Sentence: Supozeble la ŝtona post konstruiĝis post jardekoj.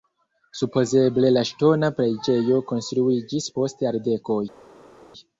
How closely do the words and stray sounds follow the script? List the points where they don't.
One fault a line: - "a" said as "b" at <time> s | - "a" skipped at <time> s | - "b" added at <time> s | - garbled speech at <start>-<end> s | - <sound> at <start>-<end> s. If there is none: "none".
- "post" said as "preĝejo" at 2.0 s